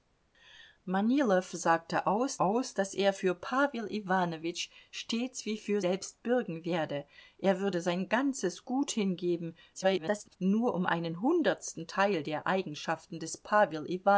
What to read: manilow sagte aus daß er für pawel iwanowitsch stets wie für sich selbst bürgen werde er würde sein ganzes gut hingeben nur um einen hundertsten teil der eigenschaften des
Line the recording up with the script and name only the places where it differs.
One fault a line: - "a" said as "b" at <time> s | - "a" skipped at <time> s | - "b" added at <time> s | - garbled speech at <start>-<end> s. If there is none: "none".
- "aus" added at 2.4 s
- "sich" skipped at 5.8 s
- garbled speech at 9.7-10.4 s